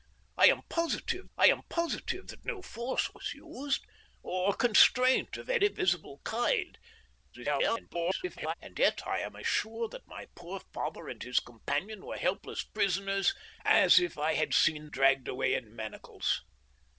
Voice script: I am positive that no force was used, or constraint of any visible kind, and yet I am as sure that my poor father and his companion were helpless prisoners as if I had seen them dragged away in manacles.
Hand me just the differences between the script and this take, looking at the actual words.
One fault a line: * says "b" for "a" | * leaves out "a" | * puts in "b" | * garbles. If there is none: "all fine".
* puts in "I am positive"
* garbles
* leaves out "them"